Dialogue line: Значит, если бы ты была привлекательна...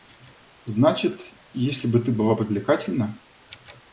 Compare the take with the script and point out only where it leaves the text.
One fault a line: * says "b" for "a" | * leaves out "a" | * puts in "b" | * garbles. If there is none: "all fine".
all fine